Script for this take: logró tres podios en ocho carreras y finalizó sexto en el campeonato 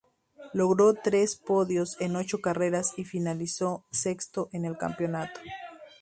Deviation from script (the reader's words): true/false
false